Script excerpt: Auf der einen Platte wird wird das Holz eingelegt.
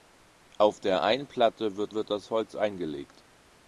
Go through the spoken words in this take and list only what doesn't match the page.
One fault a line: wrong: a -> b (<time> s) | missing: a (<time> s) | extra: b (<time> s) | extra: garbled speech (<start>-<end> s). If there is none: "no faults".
no faults